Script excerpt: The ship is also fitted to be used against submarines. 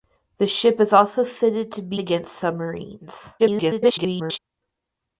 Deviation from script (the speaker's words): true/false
true